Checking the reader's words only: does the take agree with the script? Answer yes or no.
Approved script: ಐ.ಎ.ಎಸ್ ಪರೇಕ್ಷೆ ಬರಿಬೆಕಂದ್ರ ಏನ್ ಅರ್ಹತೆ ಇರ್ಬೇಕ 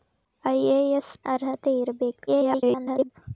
no